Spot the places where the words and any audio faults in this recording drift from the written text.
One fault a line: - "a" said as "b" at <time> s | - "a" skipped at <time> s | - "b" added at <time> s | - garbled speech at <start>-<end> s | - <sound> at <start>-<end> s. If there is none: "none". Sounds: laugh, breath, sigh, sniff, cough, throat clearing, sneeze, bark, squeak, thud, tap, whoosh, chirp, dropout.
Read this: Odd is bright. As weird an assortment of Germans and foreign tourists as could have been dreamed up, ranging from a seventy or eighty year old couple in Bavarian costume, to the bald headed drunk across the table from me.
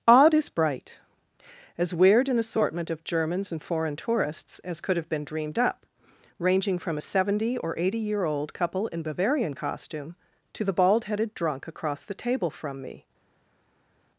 none